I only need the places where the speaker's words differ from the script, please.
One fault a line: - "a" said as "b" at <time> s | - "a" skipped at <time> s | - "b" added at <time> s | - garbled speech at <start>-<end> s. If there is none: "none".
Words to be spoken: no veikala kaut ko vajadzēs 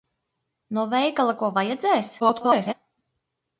- "kaut" skipped at 1.4 s
- garbled speech at 2.2-2.7 s